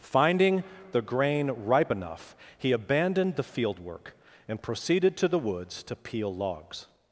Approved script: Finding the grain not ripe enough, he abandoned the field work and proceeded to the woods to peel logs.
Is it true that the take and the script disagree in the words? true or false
true